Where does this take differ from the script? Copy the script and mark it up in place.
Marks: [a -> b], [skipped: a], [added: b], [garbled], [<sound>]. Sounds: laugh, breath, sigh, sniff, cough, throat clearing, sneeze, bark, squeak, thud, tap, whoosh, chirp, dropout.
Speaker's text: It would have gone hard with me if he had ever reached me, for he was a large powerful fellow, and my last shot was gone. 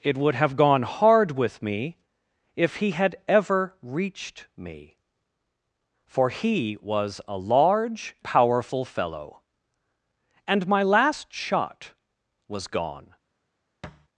It would have gone hard with me if he had ever reached me, for he was a large powerful fellow, and my last shot was gone. [thud]